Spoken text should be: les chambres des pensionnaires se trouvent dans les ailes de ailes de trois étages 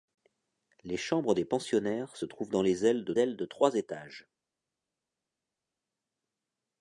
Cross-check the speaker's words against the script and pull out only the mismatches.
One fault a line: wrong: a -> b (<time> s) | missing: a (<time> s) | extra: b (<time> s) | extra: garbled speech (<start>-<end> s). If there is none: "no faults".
no faults